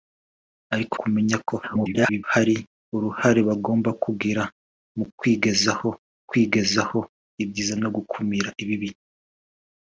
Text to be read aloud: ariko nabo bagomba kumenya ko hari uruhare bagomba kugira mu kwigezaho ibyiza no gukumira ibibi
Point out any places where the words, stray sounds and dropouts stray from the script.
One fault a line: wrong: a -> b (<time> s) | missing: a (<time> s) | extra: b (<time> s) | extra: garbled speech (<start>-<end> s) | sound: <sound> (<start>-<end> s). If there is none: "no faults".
missing: nabo bagomba (0.9 s)
extra: garbled speech (1.6-2.2 s)
extra: kwigezaho (6.3 s)